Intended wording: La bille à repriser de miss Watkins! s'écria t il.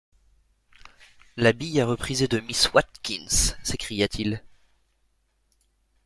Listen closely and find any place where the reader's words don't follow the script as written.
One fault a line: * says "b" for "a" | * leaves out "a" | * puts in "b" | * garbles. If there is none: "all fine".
all fine